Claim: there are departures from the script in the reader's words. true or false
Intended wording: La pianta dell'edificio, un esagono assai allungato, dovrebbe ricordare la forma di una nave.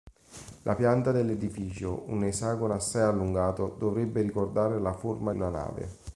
true